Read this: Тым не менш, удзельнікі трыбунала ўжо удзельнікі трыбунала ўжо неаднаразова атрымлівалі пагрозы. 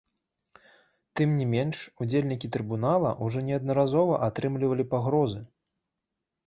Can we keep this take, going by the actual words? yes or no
no